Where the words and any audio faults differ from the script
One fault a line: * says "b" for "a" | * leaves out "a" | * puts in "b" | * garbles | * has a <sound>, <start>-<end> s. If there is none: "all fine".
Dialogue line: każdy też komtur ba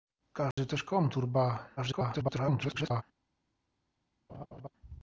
* has a dropout, 0.5-0.6 s
* garbles
* has a laugh, 4.3-4.7 s